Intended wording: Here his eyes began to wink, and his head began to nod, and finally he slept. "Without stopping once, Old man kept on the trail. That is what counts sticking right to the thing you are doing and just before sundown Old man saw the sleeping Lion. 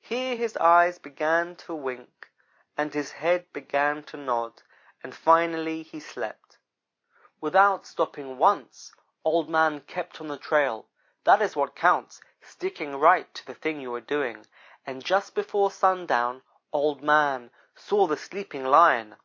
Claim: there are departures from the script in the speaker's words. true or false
false